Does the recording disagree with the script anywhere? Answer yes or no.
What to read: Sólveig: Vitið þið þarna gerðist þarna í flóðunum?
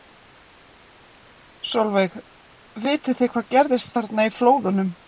yes